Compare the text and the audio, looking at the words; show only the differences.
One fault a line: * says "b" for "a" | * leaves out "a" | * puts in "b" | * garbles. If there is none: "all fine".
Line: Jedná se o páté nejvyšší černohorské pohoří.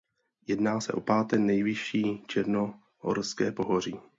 all fine